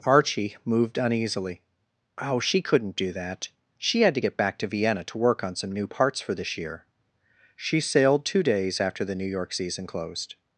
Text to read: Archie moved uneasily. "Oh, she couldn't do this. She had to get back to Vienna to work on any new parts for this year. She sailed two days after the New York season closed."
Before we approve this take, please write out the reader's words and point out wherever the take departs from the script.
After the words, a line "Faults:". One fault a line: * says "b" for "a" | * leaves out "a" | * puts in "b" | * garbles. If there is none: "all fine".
Archie moved uneasily. "Oh, she couldn't do that. She had to get back to Vienna to work on some new parts for this year. She sailed two days after the New York season closed."
Faults:
* says "that" for "this"
* says "some" for "any"